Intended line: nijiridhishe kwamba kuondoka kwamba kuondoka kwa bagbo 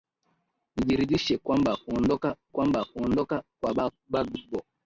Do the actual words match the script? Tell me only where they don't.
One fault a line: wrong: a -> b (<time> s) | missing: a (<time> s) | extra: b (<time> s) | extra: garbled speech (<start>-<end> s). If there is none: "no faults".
no faults